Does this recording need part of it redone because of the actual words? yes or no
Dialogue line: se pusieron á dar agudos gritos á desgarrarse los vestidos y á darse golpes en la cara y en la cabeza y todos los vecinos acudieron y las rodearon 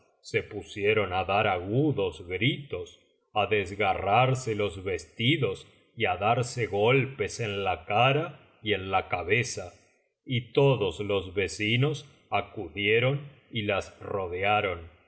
no